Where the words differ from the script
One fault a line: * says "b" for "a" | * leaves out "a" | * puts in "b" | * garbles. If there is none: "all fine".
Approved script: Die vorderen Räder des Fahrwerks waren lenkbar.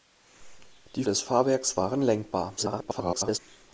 * leaves out "vorderen Räder"
* garbles